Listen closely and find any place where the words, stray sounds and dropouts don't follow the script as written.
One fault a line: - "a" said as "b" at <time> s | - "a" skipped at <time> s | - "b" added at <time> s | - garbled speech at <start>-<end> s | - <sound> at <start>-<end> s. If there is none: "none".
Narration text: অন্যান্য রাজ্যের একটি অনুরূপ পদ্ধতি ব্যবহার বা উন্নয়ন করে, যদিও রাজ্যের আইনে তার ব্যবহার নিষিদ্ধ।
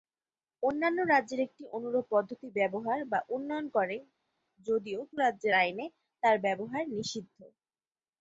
none